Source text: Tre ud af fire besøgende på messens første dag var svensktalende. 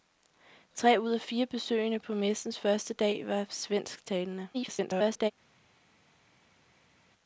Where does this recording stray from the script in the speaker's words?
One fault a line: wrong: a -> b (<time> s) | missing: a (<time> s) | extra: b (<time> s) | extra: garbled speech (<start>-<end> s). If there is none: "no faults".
extra: garbled speech (4.5-5.3 s)